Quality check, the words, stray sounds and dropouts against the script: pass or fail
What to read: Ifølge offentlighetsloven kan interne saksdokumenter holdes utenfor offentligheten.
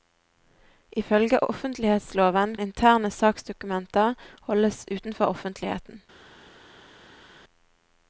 fail